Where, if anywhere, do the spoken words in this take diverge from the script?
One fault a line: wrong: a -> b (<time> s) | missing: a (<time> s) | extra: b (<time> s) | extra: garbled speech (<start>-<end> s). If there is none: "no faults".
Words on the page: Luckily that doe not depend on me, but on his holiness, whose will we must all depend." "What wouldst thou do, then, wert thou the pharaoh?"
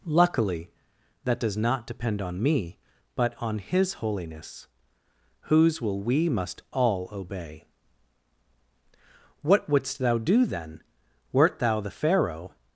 wrong: doe -> does (1.4 s)
wrong: depend -> obey (7.1 s)